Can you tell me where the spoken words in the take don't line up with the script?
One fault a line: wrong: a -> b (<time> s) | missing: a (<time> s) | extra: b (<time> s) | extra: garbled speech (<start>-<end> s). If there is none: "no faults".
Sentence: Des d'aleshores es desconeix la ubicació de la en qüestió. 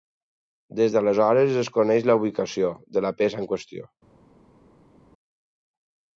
extra: peça (3.2 s)